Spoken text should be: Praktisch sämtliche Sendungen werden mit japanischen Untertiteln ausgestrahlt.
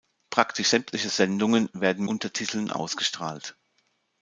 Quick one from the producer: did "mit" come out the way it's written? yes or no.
no